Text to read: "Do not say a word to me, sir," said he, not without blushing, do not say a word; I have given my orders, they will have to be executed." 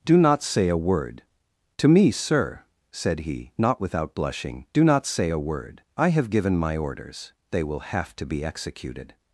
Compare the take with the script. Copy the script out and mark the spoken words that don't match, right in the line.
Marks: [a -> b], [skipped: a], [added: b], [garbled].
"Do not say a word to me, sir," said he, not without blushing, do not say a word; I have given my orders, they will have to be executed."